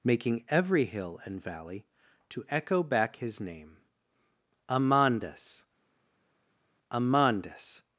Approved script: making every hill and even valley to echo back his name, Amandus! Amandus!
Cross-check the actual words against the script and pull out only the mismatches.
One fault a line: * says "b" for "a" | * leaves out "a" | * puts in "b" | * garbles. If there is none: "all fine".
* leaves out "even"